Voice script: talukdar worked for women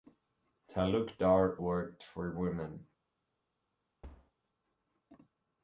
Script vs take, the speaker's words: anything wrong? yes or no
no